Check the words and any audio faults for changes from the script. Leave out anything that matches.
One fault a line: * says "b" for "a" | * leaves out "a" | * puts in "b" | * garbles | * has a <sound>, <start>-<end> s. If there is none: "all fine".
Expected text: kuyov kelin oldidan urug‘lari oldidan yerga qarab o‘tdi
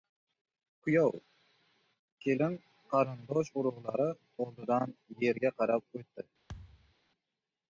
* says "qarindosh" for "oldidan"
* has a thud, 6.5-6.9 s